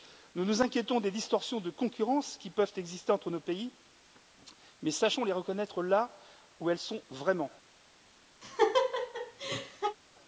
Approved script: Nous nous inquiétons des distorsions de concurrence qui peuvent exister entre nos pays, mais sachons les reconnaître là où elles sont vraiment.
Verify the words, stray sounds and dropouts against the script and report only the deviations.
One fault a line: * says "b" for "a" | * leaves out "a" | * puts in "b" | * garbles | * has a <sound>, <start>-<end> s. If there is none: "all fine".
* has a laugh, 8.4-10.0 s